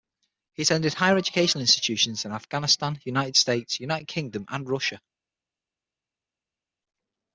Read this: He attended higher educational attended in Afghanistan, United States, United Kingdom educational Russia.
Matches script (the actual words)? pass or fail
fail